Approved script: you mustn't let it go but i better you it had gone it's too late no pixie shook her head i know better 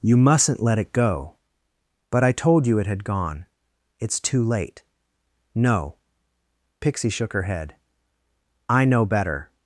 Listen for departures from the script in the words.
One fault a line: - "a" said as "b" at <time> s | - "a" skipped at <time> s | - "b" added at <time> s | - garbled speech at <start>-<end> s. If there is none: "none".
- "better" said as "told" at 2.3 s